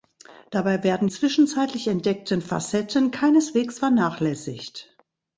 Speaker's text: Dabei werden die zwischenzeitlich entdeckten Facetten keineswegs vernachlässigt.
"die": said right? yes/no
no